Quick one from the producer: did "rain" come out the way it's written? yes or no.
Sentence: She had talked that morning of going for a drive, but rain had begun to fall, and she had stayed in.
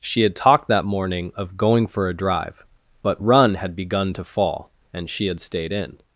no